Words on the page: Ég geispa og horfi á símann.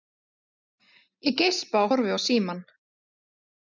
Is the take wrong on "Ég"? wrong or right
right